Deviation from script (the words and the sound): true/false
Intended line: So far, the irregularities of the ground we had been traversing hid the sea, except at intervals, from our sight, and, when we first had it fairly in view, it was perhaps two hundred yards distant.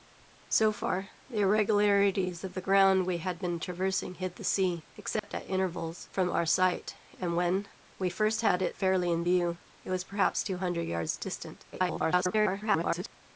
true